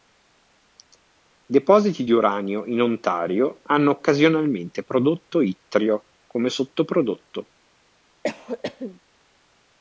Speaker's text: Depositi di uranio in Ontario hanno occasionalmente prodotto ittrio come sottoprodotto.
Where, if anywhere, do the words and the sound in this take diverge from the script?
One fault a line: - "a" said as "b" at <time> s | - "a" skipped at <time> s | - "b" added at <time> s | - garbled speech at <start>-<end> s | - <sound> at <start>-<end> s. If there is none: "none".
- cough at 8.2-9.0 s